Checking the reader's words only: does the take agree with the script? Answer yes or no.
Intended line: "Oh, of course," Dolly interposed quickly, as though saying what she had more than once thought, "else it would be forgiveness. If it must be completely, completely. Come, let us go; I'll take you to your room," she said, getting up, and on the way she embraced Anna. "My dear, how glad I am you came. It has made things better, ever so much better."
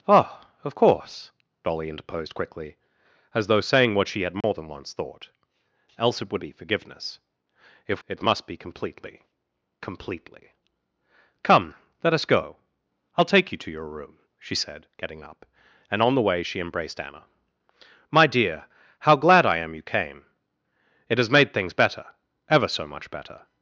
yes